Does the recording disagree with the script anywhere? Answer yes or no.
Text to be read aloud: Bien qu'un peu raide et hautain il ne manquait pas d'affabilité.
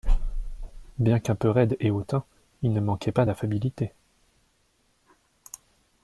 no